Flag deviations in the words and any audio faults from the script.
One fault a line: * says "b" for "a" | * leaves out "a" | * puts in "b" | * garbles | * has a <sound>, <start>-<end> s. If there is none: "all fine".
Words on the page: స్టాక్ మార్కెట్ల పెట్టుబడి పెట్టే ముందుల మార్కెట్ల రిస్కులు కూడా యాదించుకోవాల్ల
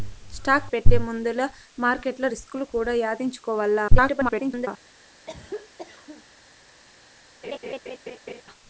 * leaves out "మార్కెట్ల పెట్టుబడి"
* garbles
* has a cough, 5.3-6.2 s
* has a laugh, 7.4-8.4 s